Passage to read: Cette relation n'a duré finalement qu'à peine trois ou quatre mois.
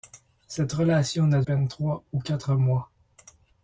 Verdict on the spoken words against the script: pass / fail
fail